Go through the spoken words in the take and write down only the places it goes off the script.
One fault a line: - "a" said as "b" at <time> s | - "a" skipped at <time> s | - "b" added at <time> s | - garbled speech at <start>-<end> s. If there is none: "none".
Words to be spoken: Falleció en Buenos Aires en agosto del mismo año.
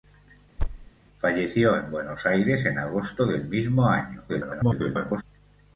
- garbled speech at 4.3-5.2 s